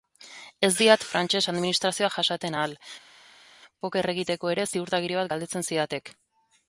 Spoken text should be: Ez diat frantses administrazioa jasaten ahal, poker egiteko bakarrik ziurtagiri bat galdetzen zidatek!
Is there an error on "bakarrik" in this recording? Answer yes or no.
yes